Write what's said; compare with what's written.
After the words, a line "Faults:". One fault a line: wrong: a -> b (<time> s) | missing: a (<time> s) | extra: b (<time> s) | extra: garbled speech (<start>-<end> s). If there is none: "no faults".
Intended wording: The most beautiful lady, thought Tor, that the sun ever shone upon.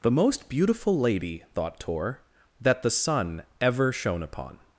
The most beautiful lady, thought Tor, that the sun ever shone upon.
Faults:
no faults